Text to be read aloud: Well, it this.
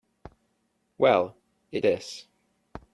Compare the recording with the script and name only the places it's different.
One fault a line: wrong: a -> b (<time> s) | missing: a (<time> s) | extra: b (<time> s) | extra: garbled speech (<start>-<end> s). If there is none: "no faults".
no faults